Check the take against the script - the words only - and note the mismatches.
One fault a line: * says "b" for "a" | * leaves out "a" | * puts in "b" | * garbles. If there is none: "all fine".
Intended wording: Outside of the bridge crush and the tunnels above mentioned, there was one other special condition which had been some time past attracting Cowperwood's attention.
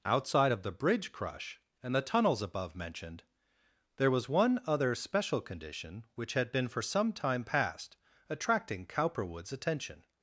* puts in "for"